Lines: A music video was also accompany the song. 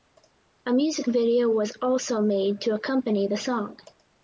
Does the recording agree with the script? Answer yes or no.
no